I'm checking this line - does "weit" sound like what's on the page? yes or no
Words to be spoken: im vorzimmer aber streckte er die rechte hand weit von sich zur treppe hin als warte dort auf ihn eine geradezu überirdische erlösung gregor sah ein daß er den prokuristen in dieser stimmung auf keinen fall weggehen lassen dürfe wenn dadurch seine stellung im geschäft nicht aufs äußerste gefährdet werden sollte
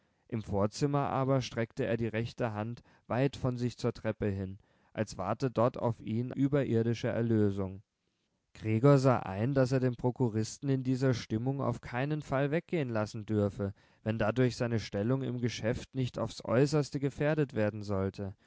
yes